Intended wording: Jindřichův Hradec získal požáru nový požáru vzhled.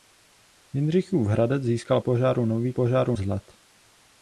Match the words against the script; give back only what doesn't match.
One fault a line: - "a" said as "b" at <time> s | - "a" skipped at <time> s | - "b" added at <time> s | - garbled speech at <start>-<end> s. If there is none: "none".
none